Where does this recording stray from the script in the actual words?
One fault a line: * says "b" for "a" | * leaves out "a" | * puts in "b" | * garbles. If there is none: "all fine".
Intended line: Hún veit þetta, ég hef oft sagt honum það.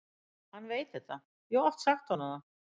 * says "Hann" for "Hún"